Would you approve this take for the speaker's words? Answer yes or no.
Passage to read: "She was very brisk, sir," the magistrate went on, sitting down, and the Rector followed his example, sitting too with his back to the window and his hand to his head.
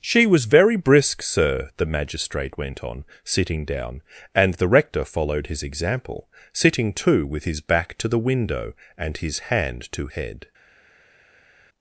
no